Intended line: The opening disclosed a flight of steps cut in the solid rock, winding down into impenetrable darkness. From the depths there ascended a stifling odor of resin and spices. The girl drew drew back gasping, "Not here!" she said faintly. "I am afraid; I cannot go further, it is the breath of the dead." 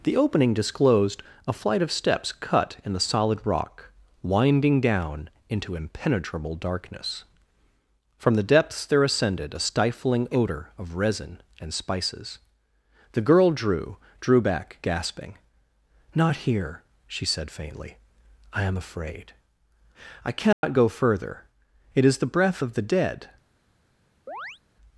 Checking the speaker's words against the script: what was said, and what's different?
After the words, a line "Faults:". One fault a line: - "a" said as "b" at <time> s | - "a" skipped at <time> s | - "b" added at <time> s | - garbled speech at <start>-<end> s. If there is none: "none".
The opening disclosed a flight of steps cut in the solid rock, winding down into impenetrable darkness. From the depths there ascended a stifling odor of resin and spices. The girl drew drew back gasping, "Not here!" she said faintly. "I am afraid; I cannot go further, it is the breath of the dead."
Faults:
none